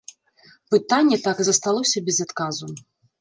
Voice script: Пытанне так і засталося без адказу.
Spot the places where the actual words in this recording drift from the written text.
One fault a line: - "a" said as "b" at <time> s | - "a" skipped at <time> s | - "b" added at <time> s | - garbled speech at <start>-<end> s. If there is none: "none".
none